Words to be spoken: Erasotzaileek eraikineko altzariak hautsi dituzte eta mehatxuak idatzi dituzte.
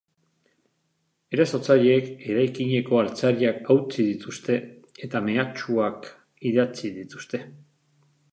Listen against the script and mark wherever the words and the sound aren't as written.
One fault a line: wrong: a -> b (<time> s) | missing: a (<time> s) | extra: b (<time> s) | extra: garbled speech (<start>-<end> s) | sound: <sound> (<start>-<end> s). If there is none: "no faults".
no faults